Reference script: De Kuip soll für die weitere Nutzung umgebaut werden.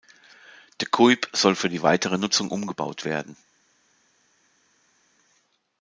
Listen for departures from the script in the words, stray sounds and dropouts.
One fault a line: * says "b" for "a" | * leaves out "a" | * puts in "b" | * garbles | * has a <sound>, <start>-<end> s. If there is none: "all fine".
all fine